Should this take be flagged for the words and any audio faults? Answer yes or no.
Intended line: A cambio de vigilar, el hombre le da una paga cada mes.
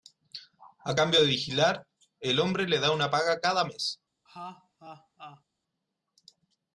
yes